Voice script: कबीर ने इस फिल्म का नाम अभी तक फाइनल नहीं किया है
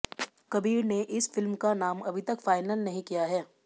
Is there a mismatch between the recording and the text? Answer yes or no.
no